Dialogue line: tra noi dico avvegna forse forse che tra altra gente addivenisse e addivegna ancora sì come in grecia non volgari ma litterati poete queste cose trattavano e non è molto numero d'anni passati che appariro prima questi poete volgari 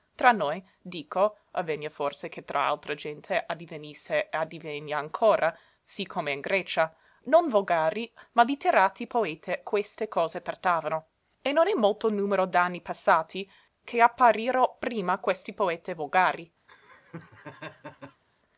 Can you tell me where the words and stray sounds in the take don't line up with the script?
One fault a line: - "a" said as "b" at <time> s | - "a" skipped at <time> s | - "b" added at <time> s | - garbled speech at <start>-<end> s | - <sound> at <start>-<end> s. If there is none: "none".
- "forse" skipped at 2.3 s
- laugh at 16.7-18.2 s